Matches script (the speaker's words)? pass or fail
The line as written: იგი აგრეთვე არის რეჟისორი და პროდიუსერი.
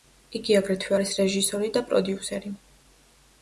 pass